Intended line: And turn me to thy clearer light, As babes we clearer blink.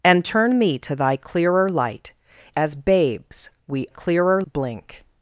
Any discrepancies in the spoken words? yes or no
no